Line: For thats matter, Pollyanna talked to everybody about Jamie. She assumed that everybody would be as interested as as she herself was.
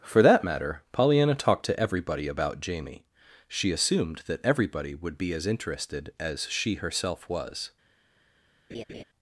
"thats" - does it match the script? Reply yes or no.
no